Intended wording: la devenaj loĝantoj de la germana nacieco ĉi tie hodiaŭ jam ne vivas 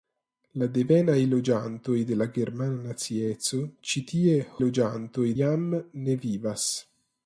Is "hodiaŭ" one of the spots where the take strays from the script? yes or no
yes